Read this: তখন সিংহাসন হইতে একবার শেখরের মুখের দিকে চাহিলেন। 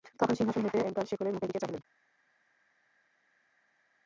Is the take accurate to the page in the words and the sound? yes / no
yes